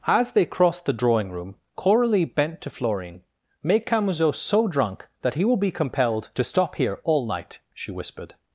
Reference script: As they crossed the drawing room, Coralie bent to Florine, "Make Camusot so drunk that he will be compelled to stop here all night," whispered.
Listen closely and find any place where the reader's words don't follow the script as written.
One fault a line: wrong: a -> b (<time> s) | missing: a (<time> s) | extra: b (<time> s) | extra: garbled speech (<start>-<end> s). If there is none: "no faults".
extra: she (7.7 s)